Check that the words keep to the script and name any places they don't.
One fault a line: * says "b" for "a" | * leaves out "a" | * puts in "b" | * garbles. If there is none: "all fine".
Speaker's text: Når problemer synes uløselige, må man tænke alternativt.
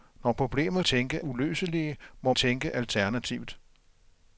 * says "tænke" for "synes"
* leaves out "man"